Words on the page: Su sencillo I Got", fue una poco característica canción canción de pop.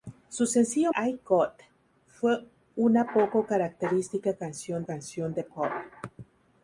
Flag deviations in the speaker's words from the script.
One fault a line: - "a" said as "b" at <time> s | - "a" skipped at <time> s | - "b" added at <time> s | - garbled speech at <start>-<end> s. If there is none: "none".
none